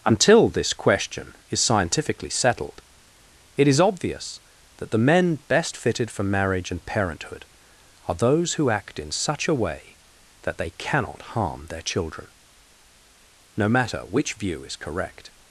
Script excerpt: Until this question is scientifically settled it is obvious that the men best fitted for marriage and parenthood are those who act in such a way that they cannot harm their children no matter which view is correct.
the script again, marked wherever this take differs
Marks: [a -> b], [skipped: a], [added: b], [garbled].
Until this question is scientifically settled it is obvious that the men best fitted for marriage and parenthood are those who act in such a way that they cannot harm their children no matter which view is correct.